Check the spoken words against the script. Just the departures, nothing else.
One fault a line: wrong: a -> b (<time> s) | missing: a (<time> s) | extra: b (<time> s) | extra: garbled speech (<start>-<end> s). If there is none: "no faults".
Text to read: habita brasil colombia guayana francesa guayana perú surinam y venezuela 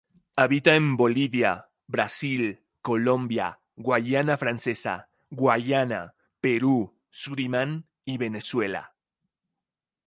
extra: en bolivia (0.8 s)